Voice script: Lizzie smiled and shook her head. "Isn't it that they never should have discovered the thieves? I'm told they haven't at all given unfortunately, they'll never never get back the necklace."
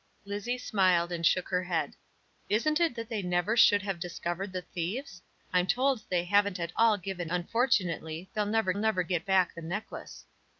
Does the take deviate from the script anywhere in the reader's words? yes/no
no